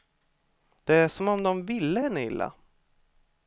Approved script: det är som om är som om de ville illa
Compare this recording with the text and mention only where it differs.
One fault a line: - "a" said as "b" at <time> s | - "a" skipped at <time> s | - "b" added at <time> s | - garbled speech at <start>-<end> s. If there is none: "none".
- "är som om" skipped at 1.4 s
- "henne" added at 2.0 s